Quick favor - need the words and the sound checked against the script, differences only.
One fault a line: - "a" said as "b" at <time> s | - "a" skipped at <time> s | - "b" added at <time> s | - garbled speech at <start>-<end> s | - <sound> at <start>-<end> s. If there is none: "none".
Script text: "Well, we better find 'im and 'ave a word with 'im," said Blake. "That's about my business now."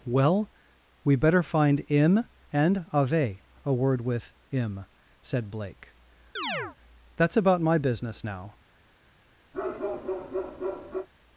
- chirp at 6.4-6.8 s
- bark at 9.5-11.1 s